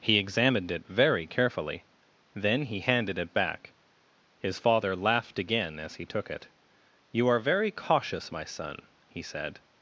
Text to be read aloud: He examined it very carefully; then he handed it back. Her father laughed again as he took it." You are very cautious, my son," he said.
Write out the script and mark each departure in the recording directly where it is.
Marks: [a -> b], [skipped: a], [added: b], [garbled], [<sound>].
He examined it very carefully; then he handed it back. [Her -> His] father laughed again as he took it." You are very cautious, my son," he said.